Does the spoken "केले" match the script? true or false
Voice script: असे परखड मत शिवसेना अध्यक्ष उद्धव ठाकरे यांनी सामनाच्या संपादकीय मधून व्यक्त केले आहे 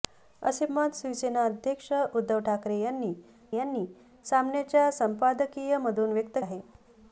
false